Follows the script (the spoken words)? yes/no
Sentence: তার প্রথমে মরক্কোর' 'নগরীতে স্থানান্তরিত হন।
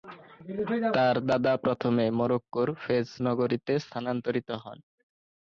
no